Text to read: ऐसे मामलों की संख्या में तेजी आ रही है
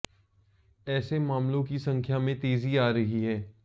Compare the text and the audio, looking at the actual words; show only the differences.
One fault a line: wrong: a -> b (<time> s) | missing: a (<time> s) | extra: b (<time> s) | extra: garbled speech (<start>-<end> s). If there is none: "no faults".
no faults